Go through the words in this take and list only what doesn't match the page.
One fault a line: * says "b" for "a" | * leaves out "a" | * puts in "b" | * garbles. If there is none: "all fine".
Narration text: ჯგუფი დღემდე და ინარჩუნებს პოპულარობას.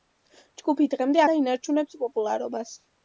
all fine